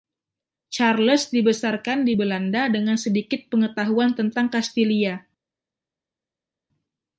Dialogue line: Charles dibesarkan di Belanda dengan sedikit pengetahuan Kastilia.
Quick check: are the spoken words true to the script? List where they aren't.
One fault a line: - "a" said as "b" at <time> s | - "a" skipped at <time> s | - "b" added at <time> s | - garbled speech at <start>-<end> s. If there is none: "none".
- "tentang" added at 4.1 s